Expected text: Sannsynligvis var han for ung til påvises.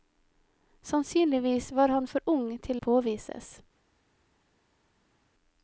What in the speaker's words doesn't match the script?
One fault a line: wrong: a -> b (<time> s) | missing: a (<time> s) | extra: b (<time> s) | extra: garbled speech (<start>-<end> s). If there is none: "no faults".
no faults